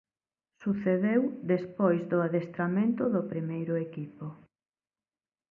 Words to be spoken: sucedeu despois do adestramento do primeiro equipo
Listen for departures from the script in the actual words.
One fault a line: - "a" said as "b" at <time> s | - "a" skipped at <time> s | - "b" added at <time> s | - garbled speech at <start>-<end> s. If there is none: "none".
none